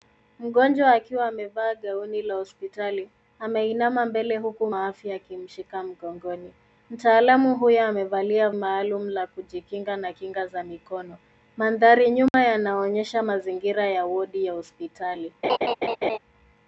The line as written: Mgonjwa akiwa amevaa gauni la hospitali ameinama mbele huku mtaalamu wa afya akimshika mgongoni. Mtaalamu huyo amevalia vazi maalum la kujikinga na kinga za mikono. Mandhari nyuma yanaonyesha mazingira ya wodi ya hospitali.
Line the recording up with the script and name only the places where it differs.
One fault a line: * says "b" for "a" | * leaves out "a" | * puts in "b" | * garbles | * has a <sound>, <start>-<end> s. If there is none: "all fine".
* leaves out "mtaalamu"
* leaves out "vazi"
* has a dropout, 12.3-12.3 s
* has a laugh, 15.4-16.2 s